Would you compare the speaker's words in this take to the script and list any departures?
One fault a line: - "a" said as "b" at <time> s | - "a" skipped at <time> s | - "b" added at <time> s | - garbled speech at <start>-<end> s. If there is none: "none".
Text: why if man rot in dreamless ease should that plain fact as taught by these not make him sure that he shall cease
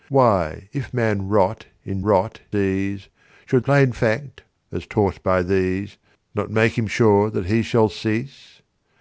- "dreamless" said as "rot" at 2.0 s
- "that" skipped at 3.6 s